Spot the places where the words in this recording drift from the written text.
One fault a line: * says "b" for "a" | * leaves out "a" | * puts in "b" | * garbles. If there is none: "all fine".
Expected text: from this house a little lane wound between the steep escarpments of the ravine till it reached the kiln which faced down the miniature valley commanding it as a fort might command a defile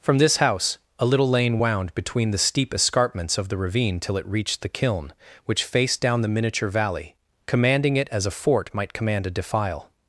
all fine